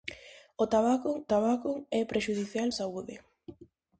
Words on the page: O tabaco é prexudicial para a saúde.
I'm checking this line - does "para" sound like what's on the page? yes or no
no